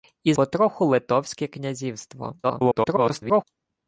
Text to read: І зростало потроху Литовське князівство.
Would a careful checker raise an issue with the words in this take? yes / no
yes